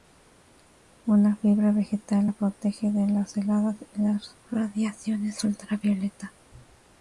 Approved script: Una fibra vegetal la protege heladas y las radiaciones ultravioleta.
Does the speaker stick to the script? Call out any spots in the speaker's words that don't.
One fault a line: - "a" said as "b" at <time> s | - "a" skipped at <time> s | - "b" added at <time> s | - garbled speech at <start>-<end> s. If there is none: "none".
- "de las" added at 2.9 s